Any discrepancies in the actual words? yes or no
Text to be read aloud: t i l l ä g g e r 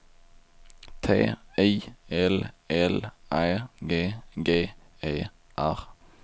no